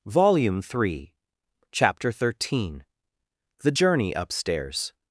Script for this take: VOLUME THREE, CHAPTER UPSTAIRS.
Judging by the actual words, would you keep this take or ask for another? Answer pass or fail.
fail